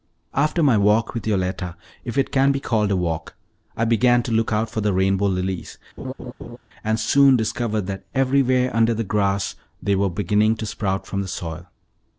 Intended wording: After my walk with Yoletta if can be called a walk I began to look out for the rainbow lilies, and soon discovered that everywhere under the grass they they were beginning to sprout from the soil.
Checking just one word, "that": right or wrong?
right